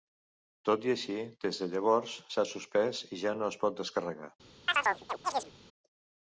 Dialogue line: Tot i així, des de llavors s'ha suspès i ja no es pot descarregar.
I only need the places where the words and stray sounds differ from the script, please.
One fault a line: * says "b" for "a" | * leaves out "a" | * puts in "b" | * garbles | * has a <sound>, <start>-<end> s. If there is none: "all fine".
* has a chirp, 4.7-5.5 s